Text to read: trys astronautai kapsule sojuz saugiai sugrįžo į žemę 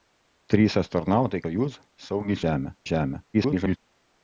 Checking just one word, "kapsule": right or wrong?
wrong